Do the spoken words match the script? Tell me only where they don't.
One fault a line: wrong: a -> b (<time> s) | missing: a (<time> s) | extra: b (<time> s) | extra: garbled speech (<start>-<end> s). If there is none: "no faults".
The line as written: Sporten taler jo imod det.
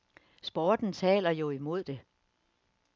no faults